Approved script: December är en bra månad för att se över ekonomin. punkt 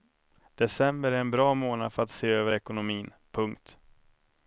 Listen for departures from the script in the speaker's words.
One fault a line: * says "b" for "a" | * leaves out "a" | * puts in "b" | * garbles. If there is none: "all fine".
all fine